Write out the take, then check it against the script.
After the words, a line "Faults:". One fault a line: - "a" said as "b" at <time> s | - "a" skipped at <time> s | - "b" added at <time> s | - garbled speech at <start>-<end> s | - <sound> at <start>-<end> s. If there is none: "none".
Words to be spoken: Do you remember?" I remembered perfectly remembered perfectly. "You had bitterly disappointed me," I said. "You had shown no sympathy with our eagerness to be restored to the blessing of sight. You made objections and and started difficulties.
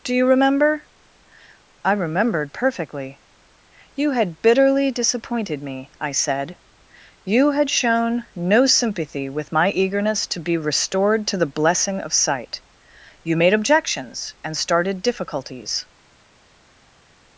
Do you remember?" I remembered perfectly. "You had bitterly disappointed me," I said. "You had shown no sympathy with my eagerness to be restored to the blessing of sight. You made objections and started difficulties.
Faults:
- "remembered perfectly" skipped at 3.2 s
- "our" said as "my" at 9.5 s
- "and" skipped at 14.6 s